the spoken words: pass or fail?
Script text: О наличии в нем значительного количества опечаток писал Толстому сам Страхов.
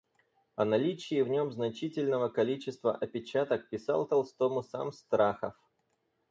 pass